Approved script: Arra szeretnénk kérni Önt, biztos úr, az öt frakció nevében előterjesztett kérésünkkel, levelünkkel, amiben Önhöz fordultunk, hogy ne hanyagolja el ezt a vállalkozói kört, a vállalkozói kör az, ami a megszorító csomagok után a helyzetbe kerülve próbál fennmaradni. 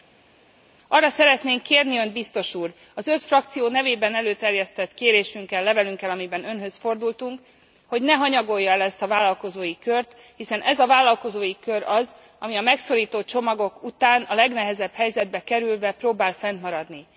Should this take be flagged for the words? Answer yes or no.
yes